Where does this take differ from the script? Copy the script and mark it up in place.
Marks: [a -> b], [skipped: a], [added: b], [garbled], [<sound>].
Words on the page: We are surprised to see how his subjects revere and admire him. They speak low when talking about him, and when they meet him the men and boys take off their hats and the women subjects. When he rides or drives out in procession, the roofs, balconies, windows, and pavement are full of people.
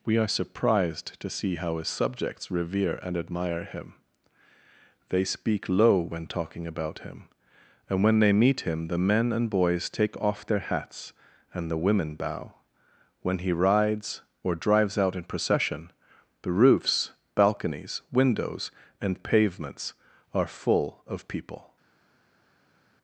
We are surprised to see how his subjects revere and admire him. They speak low when talking about him, and when they meet him the men and boys take off their hats and the women [subjects. -> bow] When he rides or drives out in procession, the roofs, balconies, windows, and [pavement -> pavements] are full of people.